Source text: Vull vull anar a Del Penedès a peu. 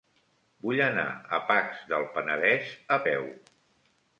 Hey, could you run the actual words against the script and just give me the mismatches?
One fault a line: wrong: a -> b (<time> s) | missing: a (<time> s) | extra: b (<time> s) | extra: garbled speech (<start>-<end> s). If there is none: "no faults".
missing: vull (0.8 s)
extra: Pacs (1.5 s)